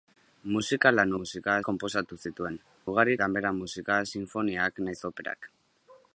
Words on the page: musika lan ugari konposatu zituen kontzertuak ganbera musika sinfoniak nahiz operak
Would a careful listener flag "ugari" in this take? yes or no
yes